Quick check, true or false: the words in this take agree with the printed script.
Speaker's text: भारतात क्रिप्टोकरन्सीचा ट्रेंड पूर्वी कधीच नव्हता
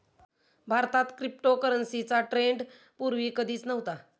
true